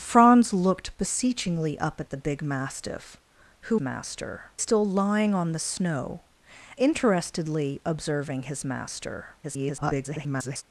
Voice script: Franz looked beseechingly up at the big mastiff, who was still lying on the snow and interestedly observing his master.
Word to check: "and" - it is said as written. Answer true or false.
false